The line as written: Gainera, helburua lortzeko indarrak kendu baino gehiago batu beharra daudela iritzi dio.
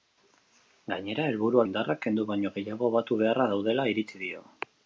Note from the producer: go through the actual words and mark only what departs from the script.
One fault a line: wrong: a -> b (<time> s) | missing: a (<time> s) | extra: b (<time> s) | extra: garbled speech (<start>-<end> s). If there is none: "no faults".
missing: lortzeko (1.6 s)